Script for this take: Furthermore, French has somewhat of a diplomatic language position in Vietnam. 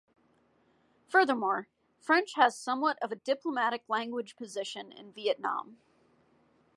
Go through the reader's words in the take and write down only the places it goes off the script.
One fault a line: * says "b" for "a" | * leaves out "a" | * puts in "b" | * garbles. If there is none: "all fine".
all fine